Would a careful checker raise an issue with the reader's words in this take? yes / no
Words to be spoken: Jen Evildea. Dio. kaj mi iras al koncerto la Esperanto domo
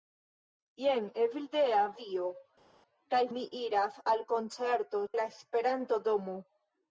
no